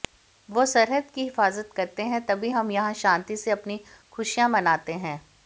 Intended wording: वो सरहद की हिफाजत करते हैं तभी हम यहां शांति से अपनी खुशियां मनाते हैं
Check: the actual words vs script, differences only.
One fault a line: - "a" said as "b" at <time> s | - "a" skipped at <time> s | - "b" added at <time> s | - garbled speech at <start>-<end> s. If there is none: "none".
none